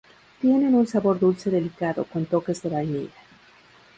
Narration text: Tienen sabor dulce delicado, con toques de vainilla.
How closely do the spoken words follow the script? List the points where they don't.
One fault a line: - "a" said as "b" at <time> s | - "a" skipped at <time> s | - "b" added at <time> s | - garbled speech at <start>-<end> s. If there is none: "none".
- "un" added at 0.7 s